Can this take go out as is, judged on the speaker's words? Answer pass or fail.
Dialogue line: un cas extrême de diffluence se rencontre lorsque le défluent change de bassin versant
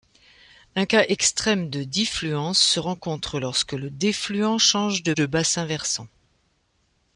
fail